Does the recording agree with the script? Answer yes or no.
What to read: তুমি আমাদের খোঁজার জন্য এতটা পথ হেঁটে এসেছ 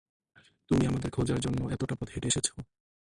yes